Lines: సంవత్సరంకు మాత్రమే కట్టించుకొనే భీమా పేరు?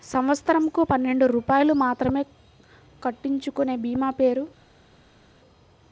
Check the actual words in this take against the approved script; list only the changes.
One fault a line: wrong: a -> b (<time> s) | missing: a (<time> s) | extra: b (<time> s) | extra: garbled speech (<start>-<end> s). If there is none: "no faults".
extra: పన్నెండు రూపాయలు (0.9 s)